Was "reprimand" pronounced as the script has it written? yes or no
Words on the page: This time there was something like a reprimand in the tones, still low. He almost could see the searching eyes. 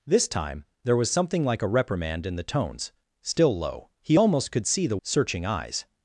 yes